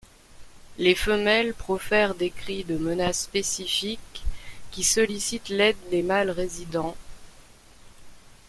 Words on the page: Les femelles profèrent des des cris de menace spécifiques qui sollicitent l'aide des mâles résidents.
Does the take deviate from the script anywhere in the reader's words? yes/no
yes